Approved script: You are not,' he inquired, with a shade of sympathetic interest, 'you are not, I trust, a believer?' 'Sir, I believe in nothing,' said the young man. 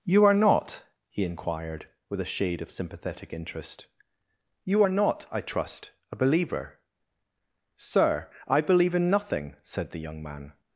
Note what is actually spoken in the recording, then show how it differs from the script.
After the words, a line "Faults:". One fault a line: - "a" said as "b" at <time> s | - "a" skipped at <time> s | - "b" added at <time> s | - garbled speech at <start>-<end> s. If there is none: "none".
You are not,' he inquired, with a shade of sympathetic interest, 'you are not, I trust, a believer?' 'Sir, I believe in nothing,' said the young man.
Faults:
none